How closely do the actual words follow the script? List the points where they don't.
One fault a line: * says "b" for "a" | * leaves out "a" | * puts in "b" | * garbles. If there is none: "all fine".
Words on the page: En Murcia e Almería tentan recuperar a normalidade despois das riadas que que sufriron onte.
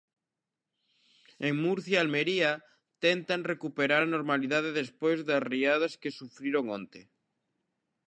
* leaves out "que"